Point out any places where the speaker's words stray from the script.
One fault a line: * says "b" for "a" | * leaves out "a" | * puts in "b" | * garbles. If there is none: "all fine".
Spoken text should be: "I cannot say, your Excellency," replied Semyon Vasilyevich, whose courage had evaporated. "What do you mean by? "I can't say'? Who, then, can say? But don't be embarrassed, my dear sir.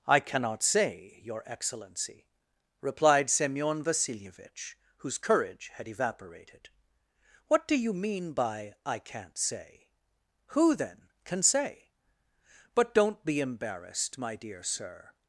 all fine